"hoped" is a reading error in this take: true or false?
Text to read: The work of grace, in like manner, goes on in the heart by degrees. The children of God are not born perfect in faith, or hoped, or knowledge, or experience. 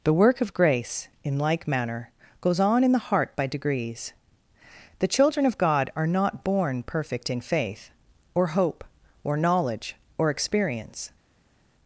true